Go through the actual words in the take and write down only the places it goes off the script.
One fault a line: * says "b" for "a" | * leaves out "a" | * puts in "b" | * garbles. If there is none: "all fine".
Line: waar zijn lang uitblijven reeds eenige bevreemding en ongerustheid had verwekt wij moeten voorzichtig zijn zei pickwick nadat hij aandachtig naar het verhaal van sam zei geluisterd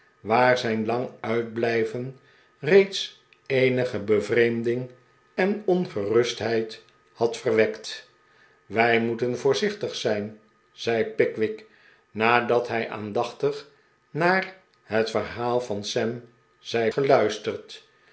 all fine